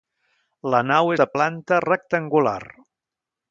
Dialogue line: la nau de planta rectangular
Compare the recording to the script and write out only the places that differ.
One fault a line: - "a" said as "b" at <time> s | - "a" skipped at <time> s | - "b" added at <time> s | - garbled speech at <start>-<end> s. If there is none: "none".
none